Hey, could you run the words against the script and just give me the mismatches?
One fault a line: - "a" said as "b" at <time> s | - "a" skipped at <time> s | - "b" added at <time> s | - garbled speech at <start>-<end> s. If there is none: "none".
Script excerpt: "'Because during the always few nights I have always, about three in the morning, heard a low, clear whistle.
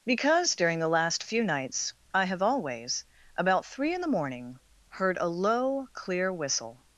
- "always" said as "last" at 0.9 s